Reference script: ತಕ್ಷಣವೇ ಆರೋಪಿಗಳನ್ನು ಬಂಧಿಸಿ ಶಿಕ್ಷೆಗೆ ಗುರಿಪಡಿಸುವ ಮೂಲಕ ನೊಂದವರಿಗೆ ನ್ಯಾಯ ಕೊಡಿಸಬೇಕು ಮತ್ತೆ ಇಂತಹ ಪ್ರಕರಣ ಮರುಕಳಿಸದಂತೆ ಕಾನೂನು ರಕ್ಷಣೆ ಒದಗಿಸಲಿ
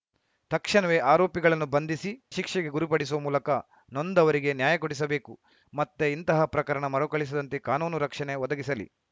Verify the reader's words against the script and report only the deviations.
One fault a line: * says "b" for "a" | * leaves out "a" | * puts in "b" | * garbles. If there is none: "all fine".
all fine